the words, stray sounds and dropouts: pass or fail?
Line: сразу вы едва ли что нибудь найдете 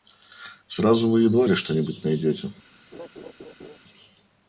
fail